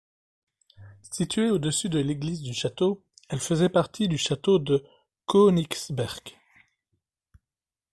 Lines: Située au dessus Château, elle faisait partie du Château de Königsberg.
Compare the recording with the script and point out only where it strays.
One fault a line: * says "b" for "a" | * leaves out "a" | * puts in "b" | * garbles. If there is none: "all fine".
* puts in "de l'Église du"